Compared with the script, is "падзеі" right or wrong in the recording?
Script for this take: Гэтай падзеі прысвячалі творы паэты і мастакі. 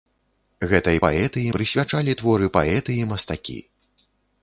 wrong